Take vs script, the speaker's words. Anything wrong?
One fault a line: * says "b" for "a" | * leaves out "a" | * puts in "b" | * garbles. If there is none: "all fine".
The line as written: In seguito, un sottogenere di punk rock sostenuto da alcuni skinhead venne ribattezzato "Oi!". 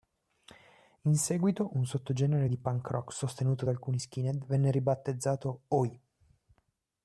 all fine